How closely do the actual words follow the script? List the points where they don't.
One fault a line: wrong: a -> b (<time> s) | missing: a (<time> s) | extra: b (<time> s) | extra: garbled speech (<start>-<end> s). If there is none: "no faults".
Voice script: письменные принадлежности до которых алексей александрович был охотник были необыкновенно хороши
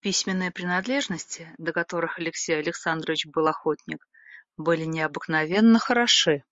no faults